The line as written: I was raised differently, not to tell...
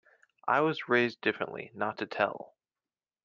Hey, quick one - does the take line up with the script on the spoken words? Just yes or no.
yes